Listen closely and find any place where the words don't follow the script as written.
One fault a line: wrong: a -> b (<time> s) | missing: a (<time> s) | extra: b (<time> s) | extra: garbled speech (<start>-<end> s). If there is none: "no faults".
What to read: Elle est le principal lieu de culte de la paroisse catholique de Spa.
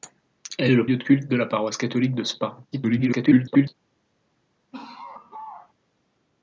missing: principal (0.9 s)
extra: garbled speech (2.7-3.7 s)